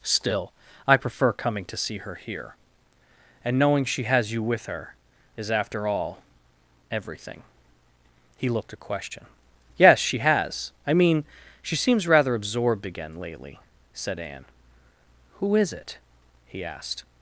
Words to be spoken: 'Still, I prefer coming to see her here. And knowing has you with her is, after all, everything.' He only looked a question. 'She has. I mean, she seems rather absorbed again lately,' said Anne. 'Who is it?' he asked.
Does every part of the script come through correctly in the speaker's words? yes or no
no